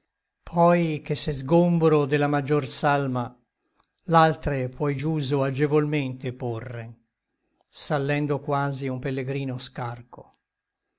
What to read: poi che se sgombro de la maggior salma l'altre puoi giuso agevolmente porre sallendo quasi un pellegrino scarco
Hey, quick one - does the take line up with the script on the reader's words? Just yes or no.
yes